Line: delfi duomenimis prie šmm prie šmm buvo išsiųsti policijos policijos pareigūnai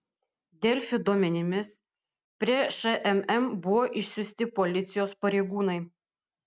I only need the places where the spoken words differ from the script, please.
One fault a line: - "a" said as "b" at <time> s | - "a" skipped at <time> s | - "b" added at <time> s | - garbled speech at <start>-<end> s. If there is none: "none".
- "prie šmm" skipped at 3.5 s
- "policijos" skipped at 5.2 s